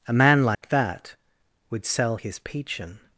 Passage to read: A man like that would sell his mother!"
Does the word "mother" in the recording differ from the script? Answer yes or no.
yes